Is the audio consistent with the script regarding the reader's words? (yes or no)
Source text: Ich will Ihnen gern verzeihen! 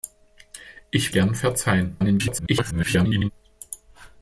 no